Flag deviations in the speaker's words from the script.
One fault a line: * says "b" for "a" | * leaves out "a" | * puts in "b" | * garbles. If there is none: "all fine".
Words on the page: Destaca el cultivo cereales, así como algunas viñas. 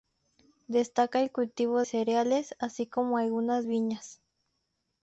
all fine